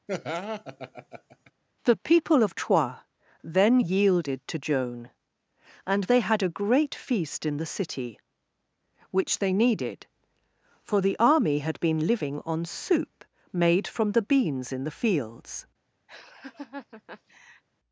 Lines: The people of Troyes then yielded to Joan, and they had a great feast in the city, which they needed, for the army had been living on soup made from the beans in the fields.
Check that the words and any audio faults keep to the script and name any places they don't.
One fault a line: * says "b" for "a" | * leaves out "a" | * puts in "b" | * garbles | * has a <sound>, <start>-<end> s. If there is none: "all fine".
* has a laugh, 0.1-1.5 s
* has a laugh, 16.1-17.6 s